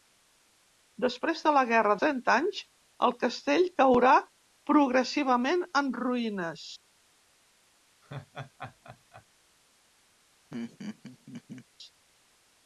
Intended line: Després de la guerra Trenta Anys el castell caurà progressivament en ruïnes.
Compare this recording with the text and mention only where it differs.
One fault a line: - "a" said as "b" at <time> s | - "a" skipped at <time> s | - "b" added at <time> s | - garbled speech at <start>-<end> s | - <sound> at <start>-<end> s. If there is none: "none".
- laugh at 8.0-9.3 s
- laugh at 10.5-11.7 s